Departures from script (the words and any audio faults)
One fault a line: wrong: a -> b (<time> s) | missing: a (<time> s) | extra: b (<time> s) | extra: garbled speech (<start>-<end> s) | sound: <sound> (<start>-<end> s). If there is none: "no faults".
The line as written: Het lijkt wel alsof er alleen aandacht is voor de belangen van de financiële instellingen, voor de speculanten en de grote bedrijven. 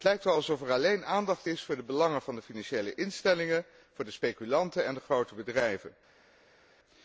no faults